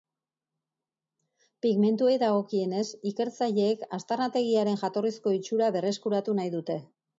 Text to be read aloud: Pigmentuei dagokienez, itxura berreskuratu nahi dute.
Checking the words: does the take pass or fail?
fail